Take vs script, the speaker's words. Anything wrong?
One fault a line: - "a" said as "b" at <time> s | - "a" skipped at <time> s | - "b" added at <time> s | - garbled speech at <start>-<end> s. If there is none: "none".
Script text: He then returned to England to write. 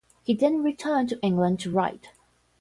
none